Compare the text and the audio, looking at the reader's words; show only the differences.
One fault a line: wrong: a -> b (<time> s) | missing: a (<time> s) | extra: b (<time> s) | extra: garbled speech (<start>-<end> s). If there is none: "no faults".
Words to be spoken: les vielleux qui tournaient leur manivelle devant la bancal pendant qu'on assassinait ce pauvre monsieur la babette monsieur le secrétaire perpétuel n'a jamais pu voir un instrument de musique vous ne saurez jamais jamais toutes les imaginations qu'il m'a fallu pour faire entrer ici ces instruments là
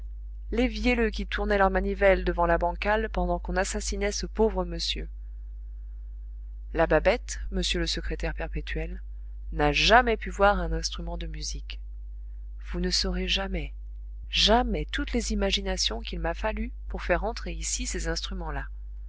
no faults